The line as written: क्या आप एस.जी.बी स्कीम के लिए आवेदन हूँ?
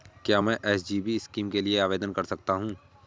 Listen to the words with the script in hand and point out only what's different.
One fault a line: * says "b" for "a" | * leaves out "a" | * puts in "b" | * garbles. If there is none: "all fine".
* says "मैं" for "आप"
* puts in "कर सकता"